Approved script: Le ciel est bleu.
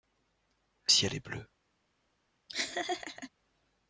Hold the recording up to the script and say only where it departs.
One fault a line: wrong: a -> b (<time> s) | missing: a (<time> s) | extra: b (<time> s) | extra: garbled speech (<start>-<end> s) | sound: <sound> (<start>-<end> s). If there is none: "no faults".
sound: laugh (2.5-3.3 s)